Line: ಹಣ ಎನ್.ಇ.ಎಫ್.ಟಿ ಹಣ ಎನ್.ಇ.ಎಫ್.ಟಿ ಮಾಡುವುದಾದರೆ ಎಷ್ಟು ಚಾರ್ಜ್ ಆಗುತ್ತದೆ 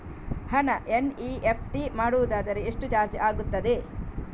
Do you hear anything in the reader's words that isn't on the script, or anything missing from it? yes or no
yes